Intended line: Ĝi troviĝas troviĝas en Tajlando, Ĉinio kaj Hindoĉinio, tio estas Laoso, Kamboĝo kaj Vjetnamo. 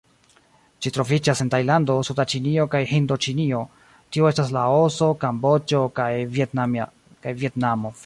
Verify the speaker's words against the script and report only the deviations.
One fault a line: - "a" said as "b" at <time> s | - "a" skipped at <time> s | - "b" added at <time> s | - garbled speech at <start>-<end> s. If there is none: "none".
- "troviĝas" skipped at 1.4 s
- "suda" added at 2.1 s